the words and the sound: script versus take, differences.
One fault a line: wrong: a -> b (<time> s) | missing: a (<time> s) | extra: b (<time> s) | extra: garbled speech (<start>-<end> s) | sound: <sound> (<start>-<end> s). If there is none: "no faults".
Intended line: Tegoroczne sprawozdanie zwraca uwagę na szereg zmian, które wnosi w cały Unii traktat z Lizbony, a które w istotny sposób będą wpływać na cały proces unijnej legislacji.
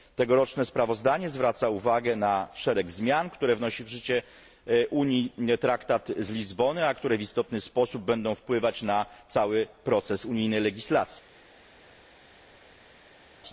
wrong: cały -> życie (3.9 s)